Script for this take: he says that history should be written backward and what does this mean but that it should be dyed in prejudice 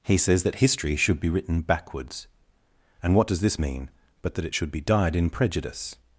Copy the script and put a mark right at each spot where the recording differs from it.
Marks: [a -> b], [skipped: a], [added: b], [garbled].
he says that history should be written [backward -> backwards] and what does this mean but that it should be dyed in prejudice